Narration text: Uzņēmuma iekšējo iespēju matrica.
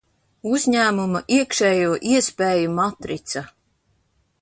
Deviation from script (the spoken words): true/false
false